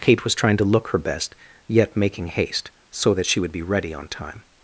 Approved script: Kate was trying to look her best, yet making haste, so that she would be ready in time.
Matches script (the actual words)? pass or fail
fail